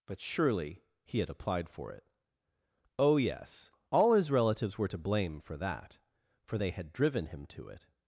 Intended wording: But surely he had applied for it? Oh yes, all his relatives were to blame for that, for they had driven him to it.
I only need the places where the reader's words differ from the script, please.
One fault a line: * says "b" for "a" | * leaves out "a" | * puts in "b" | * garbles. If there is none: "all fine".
all fine